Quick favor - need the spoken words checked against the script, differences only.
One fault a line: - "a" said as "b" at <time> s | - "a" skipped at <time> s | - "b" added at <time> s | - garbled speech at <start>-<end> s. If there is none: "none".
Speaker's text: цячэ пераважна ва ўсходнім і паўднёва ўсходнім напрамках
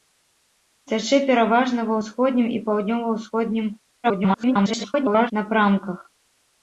- garbled speech at 4.0-5.3 s